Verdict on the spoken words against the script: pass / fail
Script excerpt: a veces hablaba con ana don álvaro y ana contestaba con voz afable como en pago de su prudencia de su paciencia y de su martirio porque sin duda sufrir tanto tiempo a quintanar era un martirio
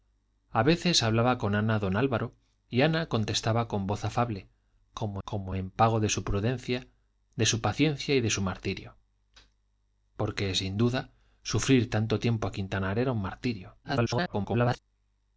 fail